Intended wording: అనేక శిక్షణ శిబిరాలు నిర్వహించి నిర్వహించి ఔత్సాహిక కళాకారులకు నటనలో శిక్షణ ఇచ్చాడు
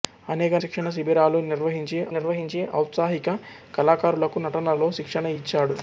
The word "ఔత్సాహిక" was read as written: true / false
true